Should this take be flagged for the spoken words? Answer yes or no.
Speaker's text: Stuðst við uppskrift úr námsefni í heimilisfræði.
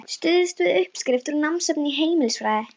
no